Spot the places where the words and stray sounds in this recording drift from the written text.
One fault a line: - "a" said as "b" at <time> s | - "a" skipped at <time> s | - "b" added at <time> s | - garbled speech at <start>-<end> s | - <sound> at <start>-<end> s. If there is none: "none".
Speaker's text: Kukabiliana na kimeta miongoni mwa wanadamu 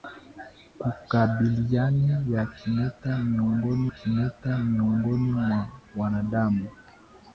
- "kimeta miongoni" added at 3.8 s